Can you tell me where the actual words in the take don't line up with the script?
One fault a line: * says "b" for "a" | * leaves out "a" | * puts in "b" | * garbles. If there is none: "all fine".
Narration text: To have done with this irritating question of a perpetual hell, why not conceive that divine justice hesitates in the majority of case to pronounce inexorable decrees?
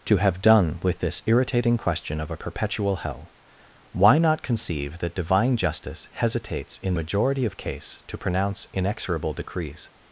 all fine